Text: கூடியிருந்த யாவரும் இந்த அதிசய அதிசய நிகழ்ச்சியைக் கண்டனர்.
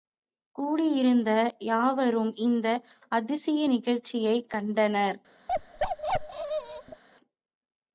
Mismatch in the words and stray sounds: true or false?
true